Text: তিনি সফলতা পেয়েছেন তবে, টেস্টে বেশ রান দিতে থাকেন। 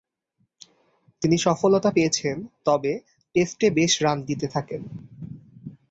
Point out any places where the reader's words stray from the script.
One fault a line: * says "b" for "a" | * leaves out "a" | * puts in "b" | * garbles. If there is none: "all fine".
all fine